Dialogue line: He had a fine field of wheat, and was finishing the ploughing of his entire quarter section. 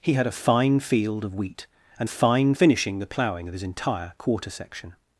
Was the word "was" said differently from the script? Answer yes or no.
yes